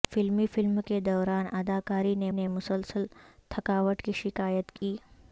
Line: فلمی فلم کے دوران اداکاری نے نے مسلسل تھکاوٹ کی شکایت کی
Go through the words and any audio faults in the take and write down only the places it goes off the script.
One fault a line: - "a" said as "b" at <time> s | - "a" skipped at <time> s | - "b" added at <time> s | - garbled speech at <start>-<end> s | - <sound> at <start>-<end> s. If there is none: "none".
- dropout at 4.8-4.8 s